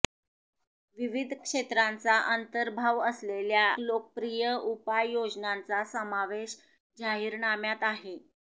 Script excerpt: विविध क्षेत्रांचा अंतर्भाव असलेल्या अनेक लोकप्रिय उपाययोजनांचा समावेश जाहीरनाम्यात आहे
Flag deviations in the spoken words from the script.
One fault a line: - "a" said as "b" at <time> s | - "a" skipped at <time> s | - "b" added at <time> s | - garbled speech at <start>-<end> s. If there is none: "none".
- "अनेक" skipped at 3.7 s